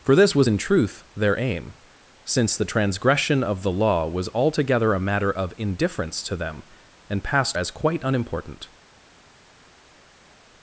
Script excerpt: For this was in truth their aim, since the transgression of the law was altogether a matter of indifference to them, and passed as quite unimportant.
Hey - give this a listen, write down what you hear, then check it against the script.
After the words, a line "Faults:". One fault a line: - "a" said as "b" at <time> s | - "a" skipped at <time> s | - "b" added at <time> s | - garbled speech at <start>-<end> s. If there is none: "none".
For this was in truth their aim, since the transgression of the law was altogether a matter of indifference to them, and passed as quite unimportant.
Faults:
none